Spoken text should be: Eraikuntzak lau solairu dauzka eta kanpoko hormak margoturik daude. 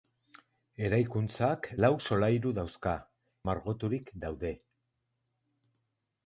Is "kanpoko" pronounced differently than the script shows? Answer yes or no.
yes